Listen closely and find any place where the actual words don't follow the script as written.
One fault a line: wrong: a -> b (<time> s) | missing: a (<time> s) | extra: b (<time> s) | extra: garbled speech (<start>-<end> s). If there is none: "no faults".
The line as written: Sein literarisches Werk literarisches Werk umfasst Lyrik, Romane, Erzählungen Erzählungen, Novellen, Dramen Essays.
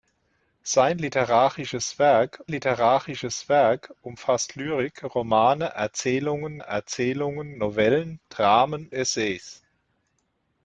no faults